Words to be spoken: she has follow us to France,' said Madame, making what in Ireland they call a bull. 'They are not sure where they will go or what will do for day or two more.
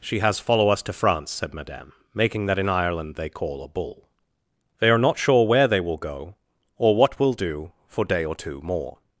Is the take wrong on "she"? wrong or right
right